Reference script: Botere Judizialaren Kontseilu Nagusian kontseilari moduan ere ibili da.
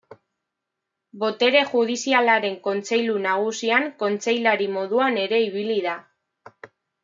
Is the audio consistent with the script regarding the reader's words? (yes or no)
yes